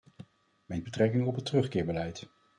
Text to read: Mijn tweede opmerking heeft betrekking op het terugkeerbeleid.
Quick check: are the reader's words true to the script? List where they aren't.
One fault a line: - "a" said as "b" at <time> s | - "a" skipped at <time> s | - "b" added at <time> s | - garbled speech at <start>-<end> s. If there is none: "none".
- "tweede opmerking heeft" skipped at 0.8 s